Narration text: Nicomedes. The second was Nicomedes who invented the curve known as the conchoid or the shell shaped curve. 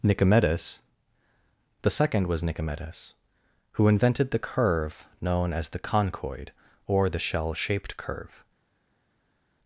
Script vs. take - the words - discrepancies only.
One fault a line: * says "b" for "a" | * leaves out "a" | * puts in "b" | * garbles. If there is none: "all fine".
all fine